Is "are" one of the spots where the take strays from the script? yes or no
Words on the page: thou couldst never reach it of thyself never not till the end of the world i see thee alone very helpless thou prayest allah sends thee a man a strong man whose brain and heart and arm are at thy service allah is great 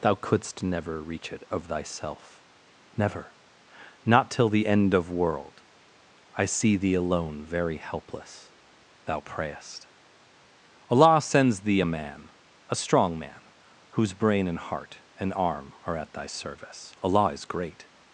no